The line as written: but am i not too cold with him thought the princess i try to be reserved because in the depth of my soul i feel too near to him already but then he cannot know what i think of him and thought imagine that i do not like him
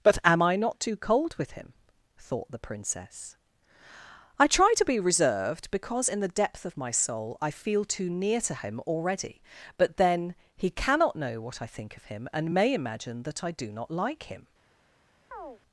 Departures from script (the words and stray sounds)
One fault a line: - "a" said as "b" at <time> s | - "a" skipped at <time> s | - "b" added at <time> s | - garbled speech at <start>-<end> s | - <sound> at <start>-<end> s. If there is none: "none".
- "thought" said as "may" at 12.5 s
- chirp at 15.3-15.6 s